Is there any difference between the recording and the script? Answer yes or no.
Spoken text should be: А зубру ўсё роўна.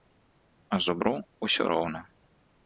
no